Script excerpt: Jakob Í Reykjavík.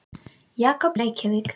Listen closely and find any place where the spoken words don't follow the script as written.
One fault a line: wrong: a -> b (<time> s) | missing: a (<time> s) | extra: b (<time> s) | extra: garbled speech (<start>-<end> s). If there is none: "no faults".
no faults